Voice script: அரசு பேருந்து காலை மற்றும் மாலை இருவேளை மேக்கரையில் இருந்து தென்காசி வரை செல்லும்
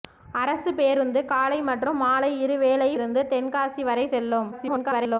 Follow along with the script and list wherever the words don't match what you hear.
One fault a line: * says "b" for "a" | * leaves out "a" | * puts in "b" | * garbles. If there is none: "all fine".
* leaves out "மேக்கரையில்"
* garbles